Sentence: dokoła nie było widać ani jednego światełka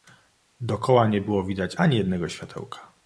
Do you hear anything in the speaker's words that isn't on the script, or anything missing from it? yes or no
no